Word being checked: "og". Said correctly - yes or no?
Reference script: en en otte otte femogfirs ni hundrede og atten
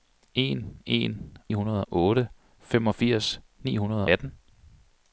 no